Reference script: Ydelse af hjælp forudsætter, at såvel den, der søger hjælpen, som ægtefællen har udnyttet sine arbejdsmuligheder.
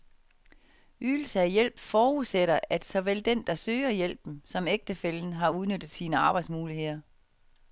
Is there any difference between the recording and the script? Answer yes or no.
no